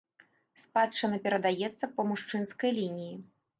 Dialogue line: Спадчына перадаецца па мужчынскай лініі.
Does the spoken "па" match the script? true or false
true